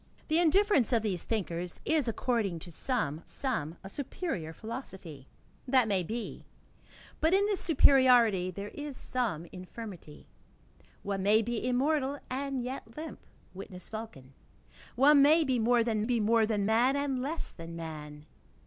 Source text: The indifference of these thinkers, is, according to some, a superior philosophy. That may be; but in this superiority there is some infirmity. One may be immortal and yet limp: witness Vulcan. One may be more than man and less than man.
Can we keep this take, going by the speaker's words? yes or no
no